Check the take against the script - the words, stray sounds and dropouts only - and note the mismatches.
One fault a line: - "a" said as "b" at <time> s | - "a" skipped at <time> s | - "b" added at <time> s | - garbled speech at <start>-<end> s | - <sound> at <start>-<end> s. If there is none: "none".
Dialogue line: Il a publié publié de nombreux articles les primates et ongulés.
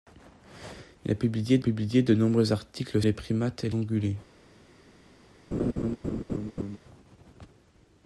- laugh at 5.5-6.8 s